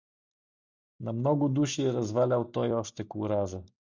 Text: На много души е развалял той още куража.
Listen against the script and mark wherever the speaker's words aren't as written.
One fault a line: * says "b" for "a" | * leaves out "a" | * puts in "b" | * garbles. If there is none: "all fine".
all fine